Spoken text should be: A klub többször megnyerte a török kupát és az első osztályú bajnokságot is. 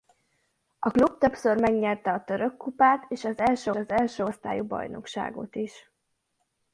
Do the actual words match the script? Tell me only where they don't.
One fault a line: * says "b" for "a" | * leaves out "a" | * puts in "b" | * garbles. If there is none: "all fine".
* puts in "az első"